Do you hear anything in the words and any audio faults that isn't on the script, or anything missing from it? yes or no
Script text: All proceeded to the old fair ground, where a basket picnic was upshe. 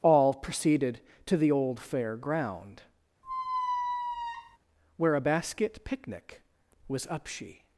yes